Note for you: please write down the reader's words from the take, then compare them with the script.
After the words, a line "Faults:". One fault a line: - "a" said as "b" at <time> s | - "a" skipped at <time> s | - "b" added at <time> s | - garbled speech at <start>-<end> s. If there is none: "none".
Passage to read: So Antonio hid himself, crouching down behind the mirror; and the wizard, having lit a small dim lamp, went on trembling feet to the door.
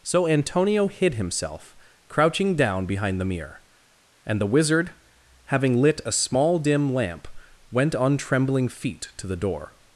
So Antonio hid himself, crouching down behind the mirror; and the wizard, having lit a small dim lamp, went on trembling feet to the door.
Faults:
none